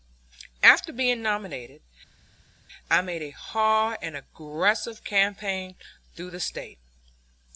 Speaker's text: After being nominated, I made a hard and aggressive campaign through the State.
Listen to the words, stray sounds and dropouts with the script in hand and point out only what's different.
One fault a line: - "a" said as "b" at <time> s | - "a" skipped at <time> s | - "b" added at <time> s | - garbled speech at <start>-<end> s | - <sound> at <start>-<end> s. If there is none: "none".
none